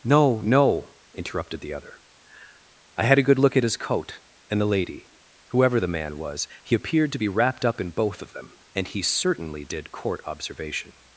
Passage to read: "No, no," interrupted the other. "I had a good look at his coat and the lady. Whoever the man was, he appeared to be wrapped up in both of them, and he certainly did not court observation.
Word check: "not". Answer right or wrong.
wrong